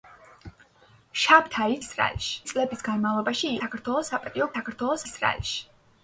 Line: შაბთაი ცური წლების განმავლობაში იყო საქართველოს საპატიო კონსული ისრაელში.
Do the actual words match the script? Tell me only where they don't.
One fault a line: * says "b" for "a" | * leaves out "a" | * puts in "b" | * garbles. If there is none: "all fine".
* says "ისრაელში" for "ცური"
* leaves out "იყო"
* says "საქართველოს" for "კონსული"